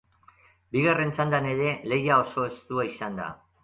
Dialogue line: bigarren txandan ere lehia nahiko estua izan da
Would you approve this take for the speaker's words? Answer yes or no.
no